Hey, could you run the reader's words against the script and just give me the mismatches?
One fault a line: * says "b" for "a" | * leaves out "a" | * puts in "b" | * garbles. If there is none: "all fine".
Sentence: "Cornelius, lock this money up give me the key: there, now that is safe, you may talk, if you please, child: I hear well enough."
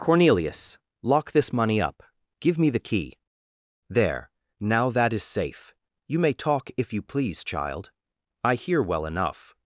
all fine